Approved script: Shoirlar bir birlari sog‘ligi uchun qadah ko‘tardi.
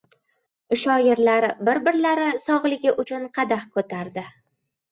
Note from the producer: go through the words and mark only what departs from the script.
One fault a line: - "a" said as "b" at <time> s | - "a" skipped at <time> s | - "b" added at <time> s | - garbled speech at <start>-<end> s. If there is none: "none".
none